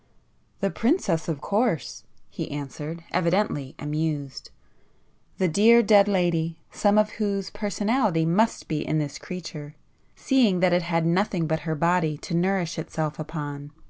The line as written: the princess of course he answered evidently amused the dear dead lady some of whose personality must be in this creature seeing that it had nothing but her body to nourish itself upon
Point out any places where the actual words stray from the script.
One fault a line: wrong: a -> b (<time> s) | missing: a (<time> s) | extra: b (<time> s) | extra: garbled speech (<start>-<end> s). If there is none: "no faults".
no faults